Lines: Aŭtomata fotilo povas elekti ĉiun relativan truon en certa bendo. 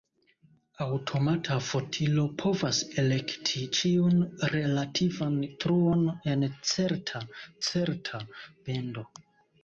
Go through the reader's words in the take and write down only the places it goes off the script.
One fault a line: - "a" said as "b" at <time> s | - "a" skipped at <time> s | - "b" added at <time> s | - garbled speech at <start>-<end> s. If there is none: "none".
- "certa" added at 7.7 s